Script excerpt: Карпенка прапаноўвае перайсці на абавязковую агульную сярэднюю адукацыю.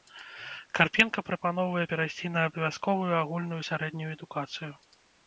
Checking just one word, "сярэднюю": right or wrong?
right